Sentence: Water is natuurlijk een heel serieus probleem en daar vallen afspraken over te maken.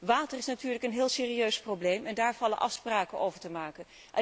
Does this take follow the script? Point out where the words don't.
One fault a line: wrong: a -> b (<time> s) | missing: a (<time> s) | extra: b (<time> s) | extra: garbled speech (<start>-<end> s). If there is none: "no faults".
no faults